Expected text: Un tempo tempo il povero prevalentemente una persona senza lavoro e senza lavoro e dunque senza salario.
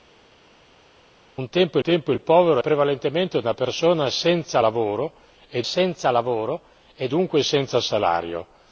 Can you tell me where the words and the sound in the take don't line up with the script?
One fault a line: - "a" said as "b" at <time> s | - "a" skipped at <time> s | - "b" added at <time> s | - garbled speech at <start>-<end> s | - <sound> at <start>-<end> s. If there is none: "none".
none